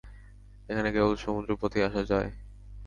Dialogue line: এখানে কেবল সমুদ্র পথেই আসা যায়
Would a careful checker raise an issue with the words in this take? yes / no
no